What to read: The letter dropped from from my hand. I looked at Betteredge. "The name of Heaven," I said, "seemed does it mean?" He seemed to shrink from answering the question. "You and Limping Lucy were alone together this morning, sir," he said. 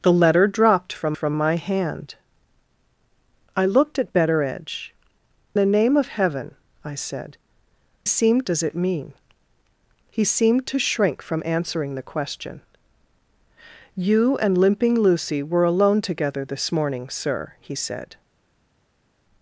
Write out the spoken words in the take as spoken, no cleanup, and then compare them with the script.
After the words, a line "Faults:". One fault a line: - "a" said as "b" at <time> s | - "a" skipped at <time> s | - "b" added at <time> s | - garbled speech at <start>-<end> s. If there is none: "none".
The letter dropped from from my hand. I looked at Betteredge. "The name of Heaven," I said, "seemed does it mean?" He seemed to shrink from answering the question. "You and Limping Lucy were alone together this morning, sir," he said.
Faults:
none